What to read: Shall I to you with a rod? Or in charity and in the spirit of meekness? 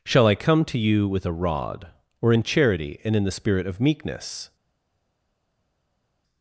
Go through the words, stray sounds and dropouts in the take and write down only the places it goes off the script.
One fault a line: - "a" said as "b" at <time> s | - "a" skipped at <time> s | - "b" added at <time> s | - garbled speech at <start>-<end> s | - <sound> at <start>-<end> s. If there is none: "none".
- "come" added at 0.3 s